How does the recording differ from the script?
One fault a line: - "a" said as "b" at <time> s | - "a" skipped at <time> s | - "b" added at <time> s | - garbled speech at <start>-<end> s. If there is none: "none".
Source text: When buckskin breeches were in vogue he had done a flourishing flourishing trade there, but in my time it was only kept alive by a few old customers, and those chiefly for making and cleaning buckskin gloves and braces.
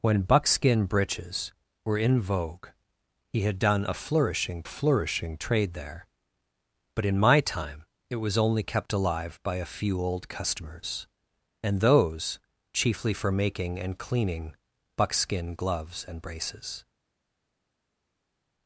none